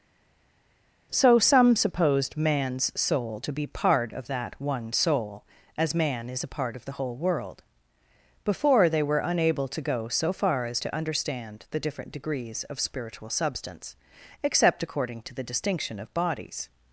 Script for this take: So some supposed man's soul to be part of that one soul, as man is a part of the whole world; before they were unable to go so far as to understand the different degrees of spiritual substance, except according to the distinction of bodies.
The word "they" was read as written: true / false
true